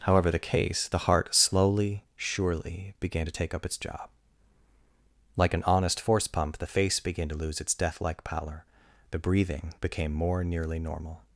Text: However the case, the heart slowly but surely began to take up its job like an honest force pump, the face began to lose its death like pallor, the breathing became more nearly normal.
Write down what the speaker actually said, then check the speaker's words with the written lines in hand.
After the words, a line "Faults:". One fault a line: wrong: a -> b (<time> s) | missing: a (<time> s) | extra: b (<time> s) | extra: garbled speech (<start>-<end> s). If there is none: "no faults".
However the case, the heart slowly surely began to take up its job like an honest force pump, the face began to lose its death like pallor, the breathing became more nearly normal.
Faults:
missing: but (2.0 s)